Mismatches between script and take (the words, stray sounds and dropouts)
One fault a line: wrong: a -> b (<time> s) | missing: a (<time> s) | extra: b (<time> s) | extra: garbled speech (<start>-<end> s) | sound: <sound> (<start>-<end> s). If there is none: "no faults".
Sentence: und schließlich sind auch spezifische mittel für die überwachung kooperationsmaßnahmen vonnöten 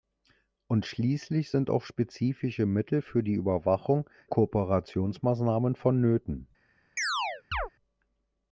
sound: chirp (7.0-7.7 s)